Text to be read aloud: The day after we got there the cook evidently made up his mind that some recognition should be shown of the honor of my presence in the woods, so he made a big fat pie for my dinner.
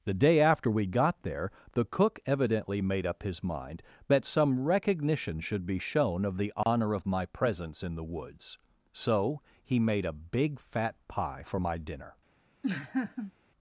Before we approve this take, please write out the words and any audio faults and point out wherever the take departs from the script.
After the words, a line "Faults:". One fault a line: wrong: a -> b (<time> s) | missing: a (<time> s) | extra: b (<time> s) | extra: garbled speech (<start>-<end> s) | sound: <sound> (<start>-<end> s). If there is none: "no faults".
The day after we got there the cook evidently made up his mind that some recognition should be shown of the honor of my presence in the woods, so he made a big fat pie for my dinner.
Faults:
sound: dropout (6.6-6.7 s)
sound: laugh (12.6-13.3 s)